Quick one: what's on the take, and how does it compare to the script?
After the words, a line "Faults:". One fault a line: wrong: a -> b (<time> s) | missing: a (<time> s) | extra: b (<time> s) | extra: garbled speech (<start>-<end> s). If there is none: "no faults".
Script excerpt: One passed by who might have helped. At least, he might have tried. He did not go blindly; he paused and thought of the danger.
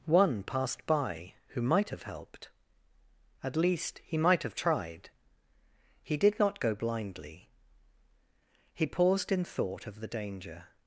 One passed by who might have helped. At least, he might have tried. He did not go blindly; he paused in thought of the danger.
Faults:
wrong: and -> in (9.3 s)